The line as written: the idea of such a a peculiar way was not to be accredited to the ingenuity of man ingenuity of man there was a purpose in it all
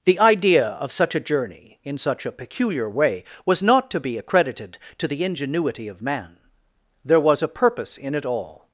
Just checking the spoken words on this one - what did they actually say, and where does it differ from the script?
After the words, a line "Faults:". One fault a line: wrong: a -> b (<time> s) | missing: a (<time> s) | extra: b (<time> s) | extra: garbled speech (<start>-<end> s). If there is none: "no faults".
the idea of such a journey in such a peculiar way was not to be accredited to the ingenuity of man there was a purpose in it all
Faults:
extra: journey in such (1.2 s)
missing: ingenuity of man (6.4 s)